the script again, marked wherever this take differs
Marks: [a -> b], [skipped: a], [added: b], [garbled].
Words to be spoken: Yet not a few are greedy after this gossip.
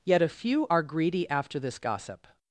Yet [skipped: not] a few are greedy after this gossip.